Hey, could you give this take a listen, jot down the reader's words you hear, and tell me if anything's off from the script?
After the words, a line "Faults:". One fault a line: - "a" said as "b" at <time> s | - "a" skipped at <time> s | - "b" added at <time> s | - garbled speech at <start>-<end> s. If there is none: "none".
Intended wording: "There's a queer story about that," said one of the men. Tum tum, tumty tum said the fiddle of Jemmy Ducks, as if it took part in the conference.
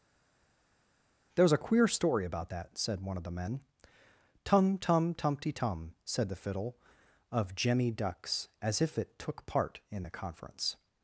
"There's a queer story about that," said one of the men. Tum tum, tumty tum said the fiddle of Jemmy Ducks, as if it took part in the conference.
Faults:
none